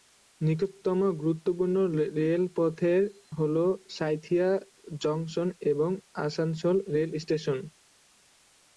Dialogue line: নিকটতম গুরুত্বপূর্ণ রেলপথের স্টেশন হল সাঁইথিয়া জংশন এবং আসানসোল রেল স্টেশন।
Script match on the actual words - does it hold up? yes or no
no